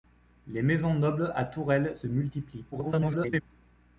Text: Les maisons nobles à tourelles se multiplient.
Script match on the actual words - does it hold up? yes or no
no